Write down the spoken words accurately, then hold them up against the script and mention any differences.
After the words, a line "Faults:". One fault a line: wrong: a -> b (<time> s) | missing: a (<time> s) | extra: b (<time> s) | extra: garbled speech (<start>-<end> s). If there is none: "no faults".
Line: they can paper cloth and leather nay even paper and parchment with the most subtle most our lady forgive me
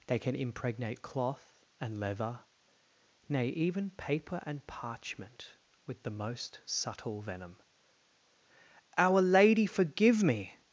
they can impregnate cloth and leather nay even paper and parchment with the most subtle venom our lady forgive me
Faults:
wrong: paper -> impregnate (0.3 s)
wrong: most -> venom (7.2 s)